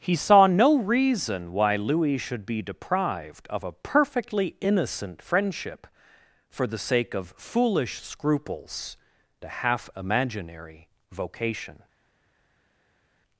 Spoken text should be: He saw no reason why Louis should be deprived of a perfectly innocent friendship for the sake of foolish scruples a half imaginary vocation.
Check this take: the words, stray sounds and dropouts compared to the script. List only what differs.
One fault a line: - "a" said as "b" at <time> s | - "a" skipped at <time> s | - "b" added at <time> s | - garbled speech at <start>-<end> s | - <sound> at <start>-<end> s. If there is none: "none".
none